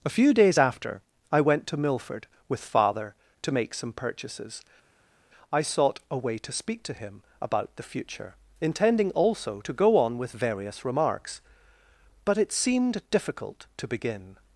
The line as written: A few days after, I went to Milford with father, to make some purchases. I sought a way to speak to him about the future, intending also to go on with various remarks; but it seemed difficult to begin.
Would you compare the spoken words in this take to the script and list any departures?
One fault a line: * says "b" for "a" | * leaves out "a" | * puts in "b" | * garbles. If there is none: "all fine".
all fine